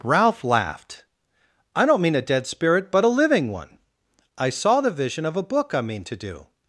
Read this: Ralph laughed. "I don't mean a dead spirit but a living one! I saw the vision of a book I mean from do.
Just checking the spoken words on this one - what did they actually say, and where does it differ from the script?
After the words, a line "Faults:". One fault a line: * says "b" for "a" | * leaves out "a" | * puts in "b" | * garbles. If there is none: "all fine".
Ralph laughed. "I don't mean a dead spirit but a living one! I saw the vision of a book I mean to do.
Faults:
* says "to" for "from"